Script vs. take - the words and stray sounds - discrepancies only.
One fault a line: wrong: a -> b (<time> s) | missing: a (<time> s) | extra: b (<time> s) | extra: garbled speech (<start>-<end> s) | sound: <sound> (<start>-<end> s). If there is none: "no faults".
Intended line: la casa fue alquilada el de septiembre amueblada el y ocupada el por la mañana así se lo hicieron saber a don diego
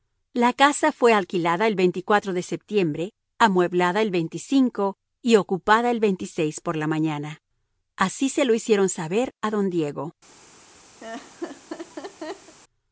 sound: laugh (11.0-12.6 s)